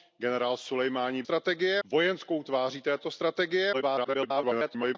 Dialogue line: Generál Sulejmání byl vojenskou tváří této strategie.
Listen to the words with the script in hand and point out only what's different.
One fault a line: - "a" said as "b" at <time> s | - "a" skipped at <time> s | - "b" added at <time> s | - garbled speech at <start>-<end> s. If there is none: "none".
- "byl" said as "strategie" at 1.2 s
- garbled speech at 3.7-5.0 s